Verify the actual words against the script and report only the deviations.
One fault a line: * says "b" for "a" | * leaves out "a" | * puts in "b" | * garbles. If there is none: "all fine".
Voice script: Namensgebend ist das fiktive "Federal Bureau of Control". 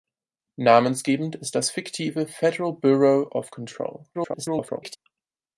* garbles